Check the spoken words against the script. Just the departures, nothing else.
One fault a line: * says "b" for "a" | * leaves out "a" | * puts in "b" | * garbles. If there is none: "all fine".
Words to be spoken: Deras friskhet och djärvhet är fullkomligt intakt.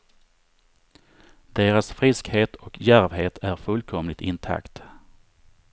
all fine